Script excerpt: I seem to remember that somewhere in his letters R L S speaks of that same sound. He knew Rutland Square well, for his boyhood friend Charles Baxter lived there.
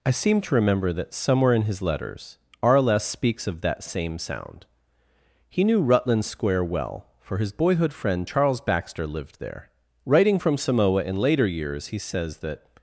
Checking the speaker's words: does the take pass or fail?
fail